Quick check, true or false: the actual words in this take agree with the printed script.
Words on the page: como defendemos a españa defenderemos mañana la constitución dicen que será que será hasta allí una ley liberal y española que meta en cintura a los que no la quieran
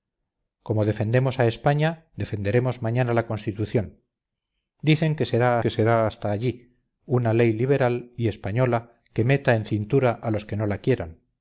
true